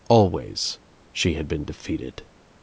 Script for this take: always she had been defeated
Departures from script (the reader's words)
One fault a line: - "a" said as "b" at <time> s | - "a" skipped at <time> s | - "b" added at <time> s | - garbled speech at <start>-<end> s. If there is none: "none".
none